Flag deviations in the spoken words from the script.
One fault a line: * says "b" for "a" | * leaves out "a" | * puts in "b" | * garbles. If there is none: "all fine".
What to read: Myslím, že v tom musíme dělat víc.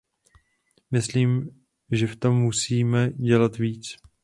all fine